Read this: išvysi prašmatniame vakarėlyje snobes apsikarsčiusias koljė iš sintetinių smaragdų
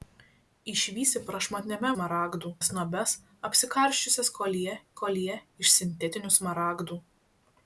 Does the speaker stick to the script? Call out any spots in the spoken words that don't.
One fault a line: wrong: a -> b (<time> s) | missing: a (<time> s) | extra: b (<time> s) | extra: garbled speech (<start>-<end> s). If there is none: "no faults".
wrong: vakarėlyje -> smaragdų (1.9 s)
extra: koljė (5.0 s)